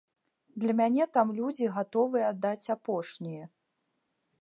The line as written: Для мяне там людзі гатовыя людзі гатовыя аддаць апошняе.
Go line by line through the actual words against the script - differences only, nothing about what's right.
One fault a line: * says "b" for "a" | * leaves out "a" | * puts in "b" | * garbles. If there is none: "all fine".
* leaves out "людзі гатовыя"